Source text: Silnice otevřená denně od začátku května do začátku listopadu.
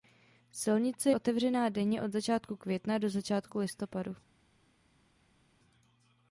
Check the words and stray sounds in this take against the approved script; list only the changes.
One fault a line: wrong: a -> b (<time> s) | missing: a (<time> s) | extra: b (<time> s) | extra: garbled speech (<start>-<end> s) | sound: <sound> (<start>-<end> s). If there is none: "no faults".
no faults